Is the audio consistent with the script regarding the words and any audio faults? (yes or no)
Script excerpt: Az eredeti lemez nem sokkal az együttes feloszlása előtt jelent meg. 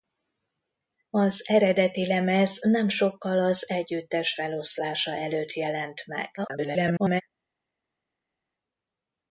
no